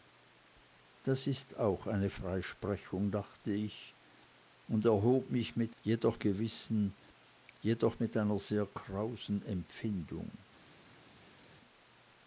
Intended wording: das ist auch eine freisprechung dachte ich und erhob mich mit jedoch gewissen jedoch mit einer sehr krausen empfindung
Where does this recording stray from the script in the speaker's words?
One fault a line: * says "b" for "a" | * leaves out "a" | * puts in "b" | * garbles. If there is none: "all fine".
all fine